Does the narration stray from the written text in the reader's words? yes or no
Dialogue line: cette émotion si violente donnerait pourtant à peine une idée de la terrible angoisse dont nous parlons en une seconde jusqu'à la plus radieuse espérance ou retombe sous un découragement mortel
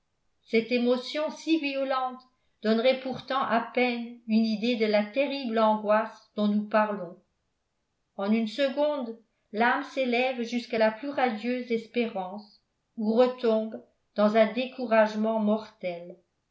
yes